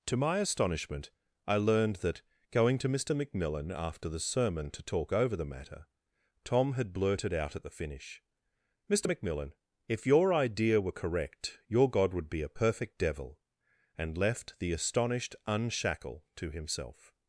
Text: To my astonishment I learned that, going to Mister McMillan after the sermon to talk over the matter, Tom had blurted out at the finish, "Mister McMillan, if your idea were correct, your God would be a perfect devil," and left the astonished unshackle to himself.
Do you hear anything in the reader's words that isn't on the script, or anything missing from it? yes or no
no